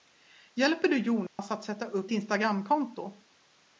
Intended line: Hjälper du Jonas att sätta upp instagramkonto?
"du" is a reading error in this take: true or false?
false